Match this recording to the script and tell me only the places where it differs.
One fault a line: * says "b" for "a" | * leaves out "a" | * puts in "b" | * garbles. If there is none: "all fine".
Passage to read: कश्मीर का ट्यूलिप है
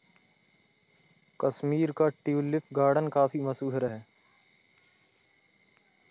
* puts in "गार्डन काफी मशहूर"